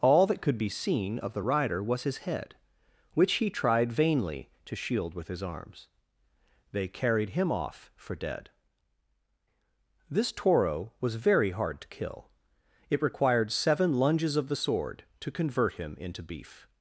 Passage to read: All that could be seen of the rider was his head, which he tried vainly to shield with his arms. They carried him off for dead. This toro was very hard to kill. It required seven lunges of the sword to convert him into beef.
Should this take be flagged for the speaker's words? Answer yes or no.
no